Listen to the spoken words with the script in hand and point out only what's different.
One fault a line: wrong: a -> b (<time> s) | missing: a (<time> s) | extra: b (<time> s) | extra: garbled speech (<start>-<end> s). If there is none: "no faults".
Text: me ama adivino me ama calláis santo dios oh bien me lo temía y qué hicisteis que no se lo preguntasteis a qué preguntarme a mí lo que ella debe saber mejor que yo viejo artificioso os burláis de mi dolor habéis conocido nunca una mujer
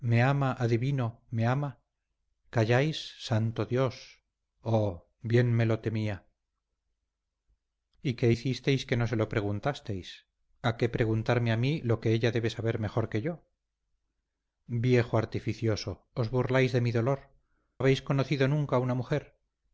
no faults